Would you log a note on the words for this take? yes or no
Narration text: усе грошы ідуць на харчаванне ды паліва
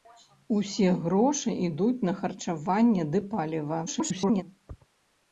yes